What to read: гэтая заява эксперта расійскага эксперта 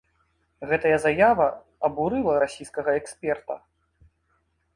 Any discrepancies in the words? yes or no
yes